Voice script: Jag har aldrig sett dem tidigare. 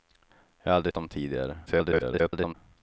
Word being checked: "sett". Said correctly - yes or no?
no